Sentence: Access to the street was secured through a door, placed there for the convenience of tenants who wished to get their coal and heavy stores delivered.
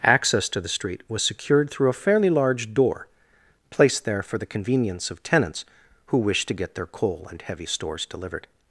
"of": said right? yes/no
yes